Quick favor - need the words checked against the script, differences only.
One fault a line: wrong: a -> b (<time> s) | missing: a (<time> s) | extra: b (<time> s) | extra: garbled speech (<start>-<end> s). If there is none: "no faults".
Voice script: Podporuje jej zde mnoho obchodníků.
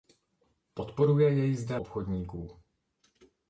missing: mnoho (1.8 s)